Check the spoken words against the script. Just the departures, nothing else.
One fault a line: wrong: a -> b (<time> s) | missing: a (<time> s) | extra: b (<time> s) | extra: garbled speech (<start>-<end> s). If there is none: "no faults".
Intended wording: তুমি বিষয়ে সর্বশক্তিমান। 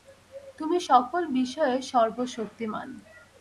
extra: সকল (0.9 s)